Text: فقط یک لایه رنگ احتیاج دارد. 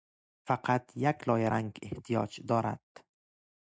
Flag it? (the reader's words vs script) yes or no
no